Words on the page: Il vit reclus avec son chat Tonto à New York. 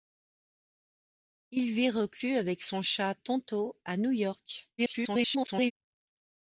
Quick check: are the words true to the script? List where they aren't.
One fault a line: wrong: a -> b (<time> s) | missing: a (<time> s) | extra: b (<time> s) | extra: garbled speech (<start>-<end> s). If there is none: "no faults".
extra: garbled speech (4.8-5.7 s)